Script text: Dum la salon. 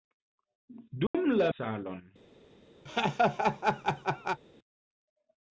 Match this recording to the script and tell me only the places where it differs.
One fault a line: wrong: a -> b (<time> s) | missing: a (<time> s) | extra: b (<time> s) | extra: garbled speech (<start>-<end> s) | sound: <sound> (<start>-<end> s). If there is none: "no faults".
sound: dropout (1.1-1.1 s)
sound: laugh (2.9-4.4 s)